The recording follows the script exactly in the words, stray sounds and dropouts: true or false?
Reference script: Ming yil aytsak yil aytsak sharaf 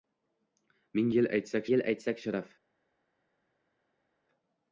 true